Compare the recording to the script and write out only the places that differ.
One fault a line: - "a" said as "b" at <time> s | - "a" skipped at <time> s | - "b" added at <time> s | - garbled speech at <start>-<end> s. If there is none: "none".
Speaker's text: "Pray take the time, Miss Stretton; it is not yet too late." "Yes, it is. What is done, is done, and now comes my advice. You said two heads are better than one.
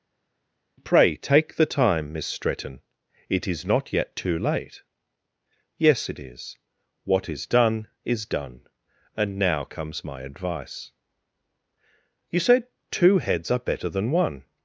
none